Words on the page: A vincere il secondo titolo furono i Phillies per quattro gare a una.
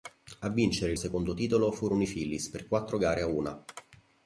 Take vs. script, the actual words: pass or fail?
pass